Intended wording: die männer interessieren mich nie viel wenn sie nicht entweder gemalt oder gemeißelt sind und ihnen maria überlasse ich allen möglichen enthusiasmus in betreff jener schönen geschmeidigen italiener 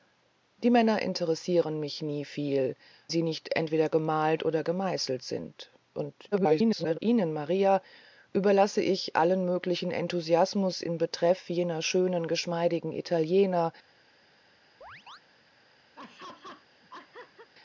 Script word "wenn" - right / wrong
wrong